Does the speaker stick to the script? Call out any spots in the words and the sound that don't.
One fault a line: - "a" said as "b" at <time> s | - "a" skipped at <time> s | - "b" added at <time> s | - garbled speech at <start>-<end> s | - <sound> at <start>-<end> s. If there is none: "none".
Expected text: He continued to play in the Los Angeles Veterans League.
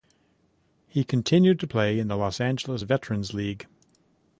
none